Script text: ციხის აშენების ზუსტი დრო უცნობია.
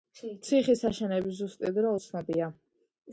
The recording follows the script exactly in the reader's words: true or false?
true